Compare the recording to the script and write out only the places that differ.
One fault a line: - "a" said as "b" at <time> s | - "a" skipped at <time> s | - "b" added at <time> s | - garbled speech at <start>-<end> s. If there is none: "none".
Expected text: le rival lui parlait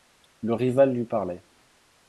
none